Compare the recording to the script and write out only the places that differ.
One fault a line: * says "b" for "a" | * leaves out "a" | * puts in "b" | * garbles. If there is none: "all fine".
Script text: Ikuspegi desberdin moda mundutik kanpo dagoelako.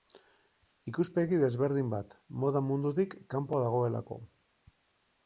* puts in "bat"